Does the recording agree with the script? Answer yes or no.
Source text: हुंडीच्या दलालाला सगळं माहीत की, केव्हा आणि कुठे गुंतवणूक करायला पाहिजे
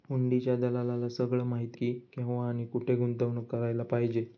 yes